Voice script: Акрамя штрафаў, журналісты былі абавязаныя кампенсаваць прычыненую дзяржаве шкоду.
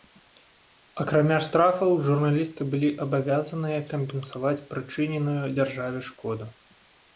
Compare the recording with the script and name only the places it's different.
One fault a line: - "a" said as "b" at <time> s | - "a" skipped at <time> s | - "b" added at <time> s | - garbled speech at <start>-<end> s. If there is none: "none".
none